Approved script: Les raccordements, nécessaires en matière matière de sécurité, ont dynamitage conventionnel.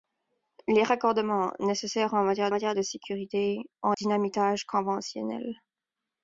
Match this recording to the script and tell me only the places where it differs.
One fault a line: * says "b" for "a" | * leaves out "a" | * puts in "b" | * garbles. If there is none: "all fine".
all fine